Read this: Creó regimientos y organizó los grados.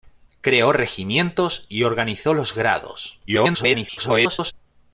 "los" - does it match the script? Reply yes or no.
yes